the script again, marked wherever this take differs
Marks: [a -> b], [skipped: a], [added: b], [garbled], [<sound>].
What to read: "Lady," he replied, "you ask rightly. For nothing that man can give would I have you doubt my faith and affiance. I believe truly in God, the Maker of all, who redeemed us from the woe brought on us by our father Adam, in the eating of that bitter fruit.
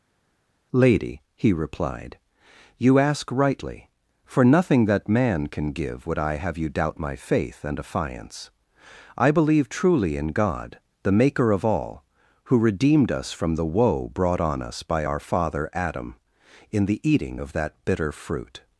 "Lady," he replied, "you ask rightly. For nothing that man can give would I have you doubt my faith and affiance. I believe truly in God, the Maker of all, who redeemed us from the woe brought on us by our father Adam, in the eating of that bitter fruit.